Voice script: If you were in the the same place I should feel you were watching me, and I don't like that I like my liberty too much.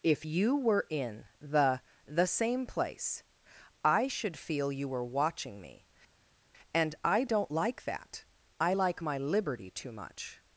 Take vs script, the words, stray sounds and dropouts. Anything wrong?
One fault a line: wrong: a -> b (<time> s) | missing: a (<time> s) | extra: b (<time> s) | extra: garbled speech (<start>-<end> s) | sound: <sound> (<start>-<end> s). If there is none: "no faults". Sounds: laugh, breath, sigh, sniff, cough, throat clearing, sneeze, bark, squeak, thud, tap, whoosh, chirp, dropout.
no faults